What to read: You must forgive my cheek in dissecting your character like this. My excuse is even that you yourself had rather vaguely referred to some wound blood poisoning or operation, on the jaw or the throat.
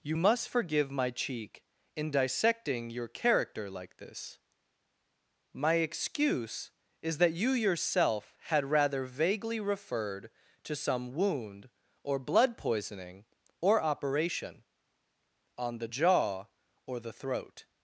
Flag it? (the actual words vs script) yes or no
yes